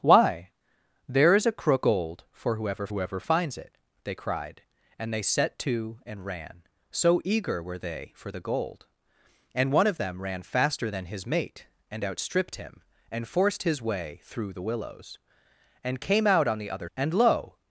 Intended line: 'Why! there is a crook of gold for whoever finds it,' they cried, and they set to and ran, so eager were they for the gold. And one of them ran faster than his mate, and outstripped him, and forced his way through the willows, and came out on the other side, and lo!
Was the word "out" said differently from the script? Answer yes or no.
no